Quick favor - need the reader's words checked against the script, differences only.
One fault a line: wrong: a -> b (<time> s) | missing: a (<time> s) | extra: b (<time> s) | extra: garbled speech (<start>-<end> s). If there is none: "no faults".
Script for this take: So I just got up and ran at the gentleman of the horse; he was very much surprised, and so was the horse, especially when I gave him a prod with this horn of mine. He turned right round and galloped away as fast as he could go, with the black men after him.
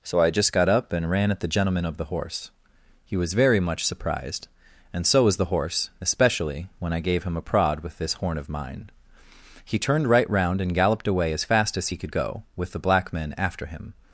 no faults